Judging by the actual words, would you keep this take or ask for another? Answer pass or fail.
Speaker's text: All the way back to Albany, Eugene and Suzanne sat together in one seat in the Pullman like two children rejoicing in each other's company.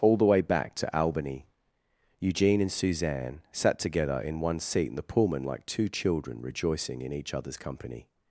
pass